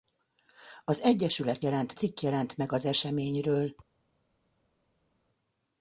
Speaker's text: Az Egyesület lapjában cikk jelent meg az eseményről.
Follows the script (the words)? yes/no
no